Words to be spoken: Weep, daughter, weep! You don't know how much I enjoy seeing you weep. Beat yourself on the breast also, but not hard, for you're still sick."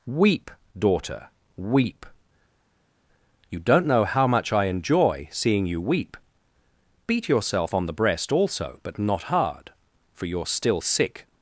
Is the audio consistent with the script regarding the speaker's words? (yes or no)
yes